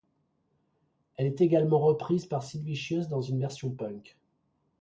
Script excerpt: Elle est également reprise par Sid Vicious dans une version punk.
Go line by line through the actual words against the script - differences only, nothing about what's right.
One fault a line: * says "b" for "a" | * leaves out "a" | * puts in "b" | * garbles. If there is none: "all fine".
all fine